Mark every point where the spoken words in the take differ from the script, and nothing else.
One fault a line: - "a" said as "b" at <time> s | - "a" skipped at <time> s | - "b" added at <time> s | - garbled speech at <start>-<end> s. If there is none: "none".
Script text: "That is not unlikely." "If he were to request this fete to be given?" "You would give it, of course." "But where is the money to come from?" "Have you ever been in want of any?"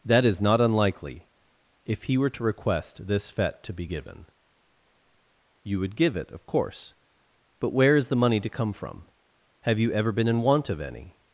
none